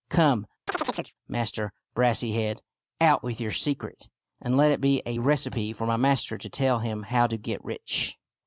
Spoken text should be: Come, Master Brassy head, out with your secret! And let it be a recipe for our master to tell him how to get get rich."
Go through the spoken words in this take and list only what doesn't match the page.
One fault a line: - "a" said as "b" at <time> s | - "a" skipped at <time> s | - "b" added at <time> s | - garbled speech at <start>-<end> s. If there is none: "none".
- "our" said as "my" at 5.9 s
- "get" skipped at 7.6 s